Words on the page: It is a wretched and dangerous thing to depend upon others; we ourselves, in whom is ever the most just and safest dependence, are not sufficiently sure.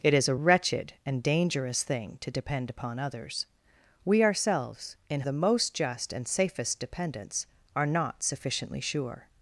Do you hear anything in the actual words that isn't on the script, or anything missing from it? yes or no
yes